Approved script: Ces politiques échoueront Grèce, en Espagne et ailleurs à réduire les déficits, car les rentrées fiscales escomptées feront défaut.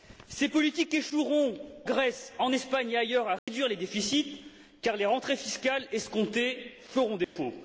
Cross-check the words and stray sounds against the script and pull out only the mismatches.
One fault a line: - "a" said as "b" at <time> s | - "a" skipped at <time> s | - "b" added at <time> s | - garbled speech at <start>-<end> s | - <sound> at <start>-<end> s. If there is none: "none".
- dropout at 3.4-3.5 s
- dropout at 7.2-7.4 s